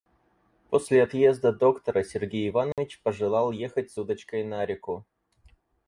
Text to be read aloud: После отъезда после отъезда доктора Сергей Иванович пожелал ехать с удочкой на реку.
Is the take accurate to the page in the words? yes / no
no